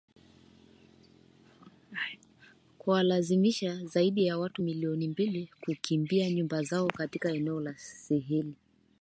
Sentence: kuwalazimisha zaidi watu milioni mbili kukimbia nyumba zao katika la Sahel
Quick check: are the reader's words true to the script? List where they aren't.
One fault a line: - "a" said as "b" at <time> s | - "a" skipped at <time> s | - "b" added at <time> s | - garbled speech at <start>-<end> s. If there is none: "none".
- "ya" added at 4.2 s
- "eneo" added at 7.3 s